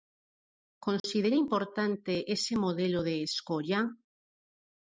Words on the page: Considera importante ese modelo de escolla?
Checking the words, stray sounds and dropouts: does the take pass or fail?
fail